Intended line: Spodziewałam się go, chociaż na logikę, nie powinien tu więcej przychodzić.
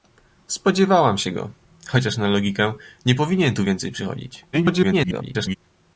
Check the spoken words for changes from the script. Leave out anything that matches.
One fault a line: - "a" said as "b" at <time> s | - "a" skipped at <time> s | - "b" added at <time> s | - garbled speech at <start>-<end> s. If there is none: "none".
- garbled speech at 4.5-5.6 s